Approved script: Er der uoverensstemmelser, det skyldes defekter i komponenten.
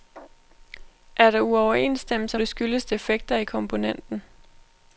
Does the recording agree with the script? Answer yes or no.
yes